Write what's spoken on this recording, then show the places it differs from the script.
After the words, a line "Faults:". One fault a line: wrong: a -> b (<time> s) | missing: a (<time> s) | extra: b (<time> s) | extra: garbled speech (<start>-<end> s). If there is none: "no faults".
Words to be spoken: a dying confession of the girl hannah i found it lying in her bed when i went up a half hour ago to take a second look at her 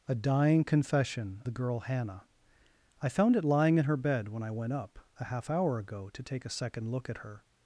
a dying confession the girl hannah i found it lying in her bed when i went up a half hour ago to take a second look at her
Faults:
missing: of (1.4 s)